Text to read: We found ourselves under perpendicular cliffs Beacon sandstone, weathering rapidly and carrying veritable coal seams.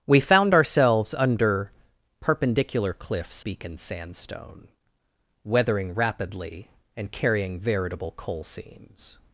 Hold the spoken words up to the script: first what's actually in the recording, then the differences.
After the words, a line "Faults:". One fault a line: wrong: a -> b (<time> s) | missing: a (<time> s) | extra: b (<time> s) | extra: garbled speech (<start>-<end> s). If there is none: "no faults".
We found ourselves under perpendicular cliffs Beacon sandstone, weathering rapidly and carrying veritable coal seams.
Faults:
no faults